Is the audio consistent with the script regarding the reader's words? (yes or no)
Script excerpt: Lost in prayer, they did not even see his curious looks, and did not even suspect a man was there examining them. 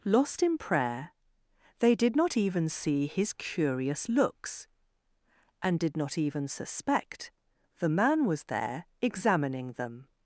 no